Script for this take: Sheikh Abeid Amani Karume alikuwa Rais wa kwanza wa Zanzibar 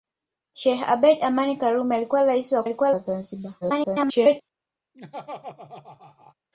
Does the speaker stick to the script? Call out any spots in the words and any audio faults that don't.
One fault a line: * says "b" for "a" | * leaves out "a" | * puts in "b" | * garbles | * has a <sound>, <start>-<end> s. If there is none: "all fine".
* says "alikuwa" for "kwanza"
* garbles
* has a laugh, 4.9-6.3 s